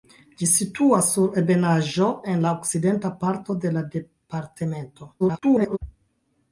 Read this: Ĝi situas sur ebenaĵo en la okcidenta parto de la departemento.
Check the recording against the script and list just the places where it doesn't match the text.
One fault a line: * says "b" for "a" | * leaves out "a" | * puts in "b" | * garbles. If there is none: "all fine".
* garbles